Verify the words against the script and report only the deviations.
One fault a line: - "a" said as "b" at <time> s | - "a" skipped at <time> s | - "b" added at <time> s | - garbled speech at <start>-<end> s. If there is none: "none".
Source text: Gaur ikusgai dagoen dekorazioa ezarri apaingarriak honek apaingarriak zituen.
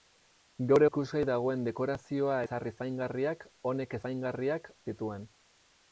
none